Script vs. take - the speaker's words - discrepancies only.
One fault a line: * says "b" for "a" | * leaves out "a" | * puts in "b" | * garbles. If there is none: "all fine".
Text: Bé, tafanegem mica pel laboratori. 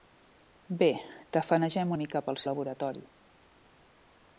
all fine